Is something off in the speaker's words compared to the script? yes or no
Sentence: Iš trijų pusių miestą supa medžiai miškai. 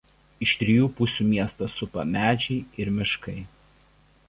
yes